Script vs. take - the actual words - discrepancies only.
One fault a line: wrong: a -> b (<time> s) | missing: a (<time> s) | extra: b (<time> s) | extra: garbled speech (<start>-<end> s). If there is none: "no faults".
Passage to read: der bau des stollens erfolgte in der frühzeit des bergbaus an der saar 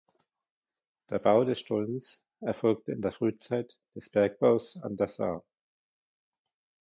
no faults